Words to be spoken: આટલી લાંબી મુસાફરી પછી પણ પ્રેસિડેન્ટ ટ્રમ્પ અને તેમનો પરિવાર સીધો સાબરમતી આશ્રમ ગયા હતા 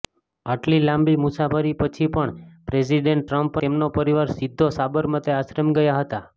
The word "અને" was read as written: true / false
false